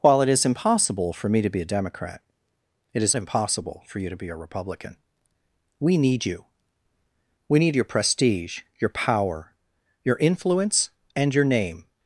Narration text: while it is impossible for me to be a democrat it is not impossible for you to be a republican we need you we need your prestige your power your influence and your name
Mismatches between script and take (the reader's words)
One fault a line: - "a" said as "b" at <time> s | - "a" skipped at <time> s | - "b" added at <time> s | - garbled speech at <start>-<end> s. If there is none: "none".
- "not" skipped at 3.1 s